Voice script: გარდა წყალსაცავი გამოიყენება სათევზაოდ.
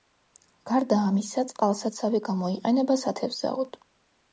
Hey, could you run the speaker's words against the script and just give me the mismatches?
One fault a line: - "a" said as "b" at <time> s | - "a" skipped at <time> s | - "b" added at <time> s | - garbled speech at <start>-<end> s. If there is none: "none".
- "ამისა" added at 1.1 s